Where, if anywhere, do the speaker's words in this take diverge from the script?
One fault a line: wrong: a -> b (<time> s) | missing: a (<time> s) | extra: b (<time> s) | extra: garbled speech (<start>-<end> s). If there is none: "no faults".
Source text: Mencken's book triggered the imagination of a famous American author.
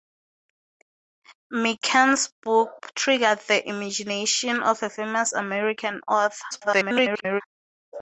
extra: garbled speech (6.5-7.4 s)